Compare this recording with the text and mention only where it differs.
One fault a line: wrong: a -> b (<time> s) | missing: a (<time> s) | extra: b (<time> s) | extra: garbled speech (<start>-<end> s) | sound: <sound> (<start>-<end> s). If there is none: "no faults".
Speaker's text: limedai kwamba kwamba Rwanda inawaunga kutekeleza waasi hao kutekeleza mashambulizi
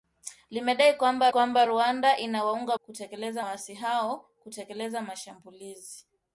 no faults